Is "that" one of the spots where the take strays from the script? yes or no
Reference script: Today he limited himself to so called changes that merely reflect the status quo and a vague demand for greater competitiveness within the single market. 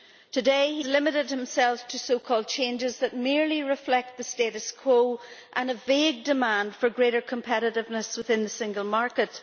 no